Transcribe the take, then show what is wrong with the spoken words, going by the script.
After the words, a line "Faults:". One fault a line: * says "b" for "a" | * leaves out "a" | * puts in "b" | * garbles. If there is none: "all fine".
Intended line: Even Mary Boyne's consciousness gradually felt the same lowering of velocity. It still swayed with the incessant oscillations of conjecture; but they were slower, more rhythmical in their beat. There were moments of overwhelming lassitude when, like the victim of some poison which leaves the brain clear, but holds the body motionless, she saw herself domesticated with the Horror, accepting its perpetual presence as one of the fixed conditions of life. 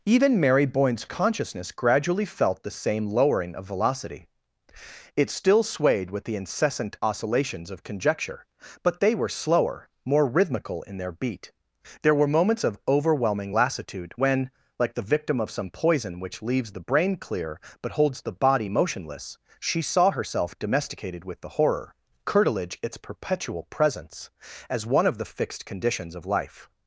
Even Mary Boyne's consciousness gradually felt the same lowering of velocity. It still swayed with the incessant oscillations of conjecture; but they were slower, more rhythmical in their beat. There were moments of overwhelming lassitude when, like the victim of some poison which leaves the brain clear, but holds the body motionless, she saw herself domesticated with the Horror, curtilage its perpetual presence as one of the fixed conditions of life.
Faults:
* says "curtilage" for "accepting"